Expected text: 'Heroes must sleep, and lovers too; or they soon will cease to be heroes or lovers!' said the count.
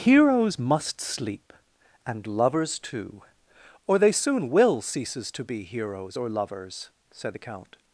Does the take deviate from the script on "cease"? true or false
true